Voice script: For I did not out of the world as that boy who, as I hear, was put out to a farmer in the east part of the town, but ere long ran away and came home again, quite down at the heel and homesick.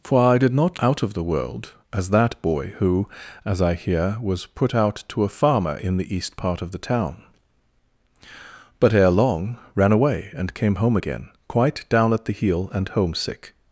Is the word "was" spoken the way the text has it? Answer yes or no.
yes